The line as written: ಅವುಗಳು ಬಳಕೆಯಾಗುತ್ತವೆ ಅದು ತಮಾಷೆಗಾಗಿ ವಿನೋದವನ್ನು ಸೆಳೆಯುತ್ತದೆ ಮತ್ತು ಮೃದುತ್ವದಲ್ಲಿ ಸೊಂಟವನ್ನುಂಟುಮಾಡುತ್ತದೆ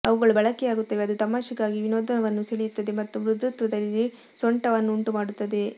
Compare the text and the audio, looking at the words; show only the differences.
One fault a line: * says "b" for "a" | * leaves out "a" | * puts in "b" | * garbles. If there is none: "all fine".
all fine